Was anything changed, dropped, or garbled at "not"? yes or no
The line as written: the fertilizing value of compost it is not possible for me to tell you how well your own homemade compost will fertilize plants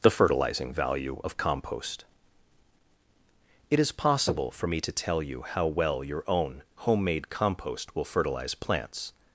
yes